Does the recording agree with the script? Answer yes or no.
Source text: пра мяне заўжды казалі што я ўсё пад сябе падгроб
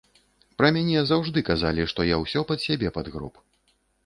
yes